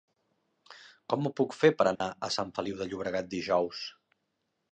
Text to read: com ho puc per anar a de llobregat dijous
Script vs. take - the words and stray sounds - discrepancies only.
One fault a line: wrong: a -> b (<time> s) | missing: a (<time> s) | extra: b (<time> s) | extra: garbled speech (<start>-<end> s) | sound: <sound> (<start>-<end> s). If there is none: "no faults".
extra: fer (1.6 s)
sound: dropout (2.0-2.0 s)
extra: sant feliu (2.4 s)